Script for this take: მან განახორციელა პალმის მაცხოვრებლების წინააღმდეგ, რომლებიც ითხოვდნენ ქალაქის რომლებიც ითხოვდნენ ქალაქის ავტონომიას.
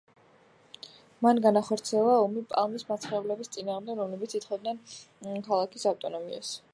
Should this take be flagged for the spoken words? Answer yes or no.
yes